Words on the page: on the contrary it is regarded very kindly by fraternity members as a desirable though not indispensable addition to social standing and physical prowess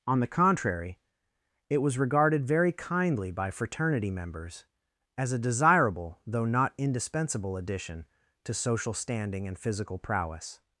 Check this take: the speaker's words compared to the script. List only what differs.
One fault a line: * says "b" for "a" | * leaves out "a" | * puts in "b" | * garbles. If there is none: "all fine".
* says "was" for "is"